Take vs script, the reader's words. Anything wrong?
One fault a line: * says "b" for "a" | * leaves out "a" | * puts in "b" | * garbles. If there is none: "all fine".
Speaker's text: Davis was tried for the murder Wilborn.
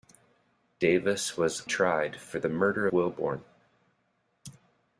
all fine